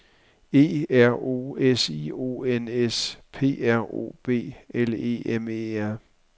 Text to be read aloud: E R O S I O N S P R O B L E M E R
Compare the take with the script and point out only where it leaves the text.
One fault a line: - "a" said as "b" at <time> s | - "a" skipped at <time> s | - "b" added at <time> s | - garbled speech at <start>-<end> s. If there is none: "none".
none